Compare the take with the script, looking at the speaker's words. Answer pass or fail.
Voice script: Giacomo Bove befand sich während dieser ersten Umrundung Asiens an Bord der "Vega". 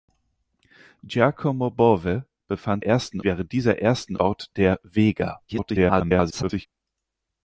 fail